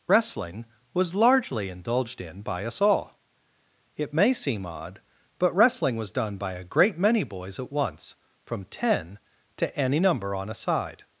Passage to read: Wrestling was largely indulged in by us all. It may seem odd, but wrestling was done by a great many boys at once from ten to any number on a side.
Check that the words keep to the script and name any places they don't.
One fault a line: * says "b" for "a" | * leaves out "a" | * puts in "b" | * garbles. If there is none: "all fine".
all fine